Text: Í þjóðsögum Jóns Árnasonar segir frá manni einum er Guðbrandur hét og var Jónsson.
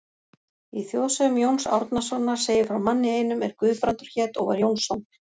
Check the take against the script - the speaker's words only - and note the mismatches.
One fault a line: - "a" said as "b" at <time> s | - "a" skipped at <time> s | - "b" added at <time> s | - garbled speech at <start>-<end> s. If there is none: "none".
none